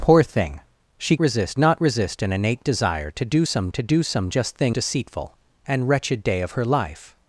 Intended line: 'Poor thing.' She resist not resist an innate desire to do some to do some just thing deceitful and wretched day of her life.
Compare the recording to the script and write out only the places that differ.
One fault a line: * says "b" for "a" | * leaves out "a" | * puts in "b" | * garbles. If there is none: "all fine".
all fine